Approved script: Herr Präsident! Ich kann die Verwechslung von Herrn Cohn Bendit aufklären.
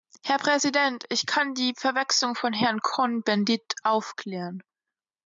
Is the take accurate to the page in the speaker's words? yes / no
yes